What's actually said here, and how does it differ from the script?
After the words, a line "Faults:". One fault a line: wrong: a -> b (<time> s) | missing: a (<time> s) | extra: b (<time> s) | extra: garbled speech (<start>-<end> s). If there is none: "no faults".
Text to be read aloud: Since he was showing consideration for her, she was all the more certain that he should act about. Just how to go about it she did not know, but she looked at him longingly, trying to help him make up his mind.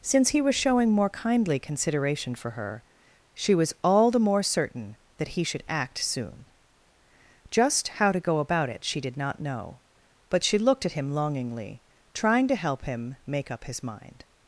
Since he was showing more kindly consideration for her, she was all the more certain that he should act soon. Just how to go about it she did not know, but she looked at him longingly, trying to help him make up his mind.
Faults:
extra: more kindly (0.9 s)
wrong: about -> soon (6.0 s)